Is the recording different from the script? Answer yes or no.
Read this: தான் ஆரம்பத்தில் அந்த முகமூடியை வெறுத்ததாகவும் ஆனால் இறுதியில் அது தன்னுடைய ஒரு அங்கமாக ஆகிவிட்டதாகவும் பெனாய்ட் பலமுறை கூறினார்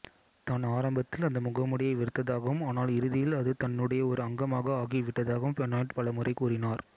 no